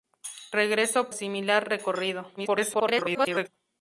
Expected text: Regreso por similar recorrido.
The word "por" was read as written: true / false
false